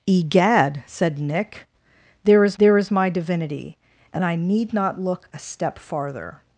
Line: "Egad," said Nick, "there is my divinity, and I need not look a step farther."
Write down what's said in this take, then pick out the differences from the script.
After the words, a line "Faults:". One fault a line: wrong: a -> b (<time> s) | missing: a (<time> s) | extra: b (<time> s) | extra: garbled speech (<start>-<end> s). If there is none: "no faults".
"Egad," said Nick, "there is there is my divinity, and I need not look a step farther."
Faults:
extra: there is (2.6 s)